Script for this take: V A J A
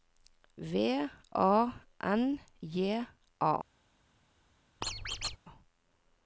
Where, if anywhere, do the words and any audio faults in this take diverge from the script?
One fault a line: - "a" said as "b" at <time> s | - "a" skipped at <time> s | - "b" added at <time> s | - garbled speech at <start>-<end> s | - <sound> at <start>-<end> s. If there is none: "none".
- "N" added at 2.0 s
- squeak at 4.8-5.4 s